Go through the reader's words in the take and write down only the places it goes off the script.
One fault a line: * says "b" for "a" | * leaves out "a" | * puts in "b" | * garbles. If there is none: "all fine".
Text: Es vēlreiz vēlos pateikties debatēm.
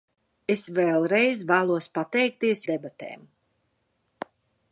all fine